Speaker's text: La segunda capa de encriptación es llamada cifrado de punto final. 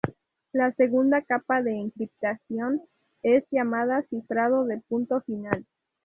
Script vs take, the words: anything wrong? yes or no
no